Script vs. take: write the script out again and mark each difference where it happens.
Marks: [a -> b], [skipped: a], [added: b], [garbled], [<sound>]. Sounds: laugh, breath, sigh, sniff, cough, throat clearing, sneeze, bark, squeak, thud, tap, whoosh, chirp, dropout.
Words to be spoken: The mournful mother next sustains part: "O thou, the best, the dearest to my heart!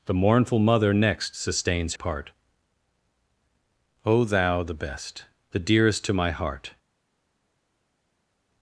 The mournful mother next sustains part: "O thou, the best, the dearest to my heart!